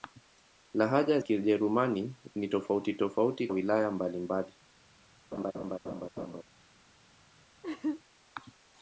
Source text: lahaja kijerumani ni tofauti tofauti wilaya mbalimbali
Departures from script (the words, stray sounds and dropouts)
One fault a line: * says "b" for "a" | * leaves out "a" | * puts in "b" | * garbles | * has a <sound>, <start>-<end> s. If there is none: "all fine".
* has a laugh, 5.3-6.4 s
* has a laugh, 7.6-8.0 s